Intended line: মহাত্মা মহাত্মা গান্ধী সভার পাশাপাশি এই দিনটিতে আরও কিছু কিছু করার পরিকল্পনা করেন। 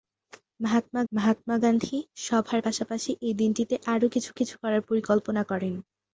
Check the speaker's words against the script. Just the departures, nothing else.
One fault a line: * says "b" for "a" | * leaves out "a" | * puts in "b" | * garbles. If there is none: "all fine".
all fine